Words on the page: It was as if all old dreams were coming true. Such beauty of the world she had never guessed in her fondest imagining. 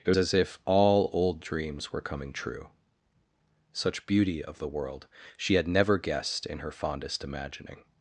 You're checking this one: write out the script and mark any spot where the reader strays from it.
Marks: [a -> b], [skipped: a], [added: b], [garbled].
It [skipped: was] as if all old dreams were coming true. Such beauty of the world she had never guessed in her fondest imagining.